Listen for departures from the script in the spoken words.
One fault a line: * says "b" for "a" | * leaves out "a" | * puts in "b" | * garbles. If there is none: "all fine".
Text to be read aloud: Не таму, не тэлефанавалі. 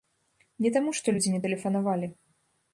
* puts in "што людзі"